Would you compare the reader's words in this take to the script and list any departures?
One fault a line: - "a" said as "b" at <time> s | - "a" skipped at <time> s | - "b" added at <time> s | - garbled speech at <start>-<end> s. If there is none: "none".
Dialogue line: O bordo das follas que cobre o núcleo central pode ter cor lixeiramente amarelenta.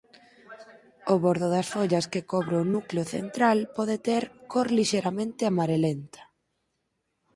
none